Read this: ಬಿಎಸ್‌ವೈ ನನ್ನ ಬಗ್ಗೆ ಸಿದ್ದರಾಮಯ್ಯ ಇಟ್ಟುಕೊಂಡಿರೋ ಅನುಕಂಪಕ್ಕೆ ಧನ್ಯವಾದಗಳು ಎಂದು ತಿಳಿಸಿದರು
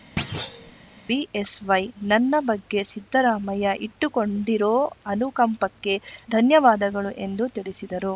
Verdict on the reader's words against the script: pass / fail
pass